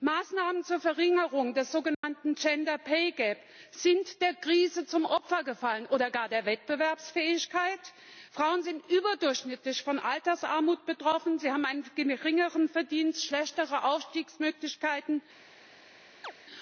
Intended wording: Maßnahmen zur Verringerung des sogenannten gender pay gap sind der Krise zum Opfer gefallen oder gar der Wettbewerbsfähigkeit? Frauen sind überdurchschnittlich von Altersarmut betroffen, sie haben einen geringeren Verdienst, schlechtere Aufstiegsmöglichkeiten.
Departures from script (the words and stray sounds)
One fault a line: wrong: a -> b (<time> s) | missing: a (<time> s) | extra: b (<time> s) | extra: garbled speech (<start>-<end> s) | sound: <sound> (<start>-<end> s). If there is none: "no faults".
sound: dropout (1.9-2.0 s)
sound: chirp (16.2-16.3 s)